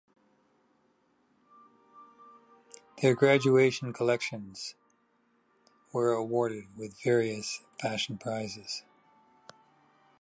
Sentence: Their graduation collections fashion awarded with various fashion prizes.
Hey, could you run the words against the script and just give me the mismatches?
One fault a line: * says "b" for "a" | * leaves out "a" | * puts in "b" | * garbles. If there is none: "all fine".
* says "were" for "fashion"